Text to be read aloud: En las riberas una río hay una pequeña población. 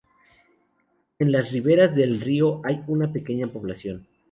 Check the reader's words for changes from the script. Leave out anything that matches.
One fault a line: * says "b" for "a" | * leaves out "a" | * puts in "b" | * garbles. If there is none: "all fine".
* says "del" for "una"